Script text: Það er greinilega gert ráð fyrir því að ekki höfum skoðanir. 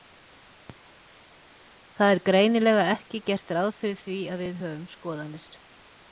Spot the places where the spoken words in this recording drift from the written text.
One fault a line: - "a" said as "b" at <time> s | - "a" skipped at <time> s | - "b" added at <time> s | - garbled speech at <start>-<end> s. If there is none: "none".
- "ekki" added at 2.9 s
- "ekki" said as "við" at 4.5 s